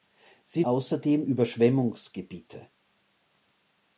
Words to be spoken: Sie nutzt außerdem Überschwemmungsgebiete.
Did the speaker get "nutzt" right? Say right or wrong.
wrong